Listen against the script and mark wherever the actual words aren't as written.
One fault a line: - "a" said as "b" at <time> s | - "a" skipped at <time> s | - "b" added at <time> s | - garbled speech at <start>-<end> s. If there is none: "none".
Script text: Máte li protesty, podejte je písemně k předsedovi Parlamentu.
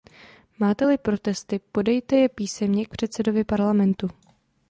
none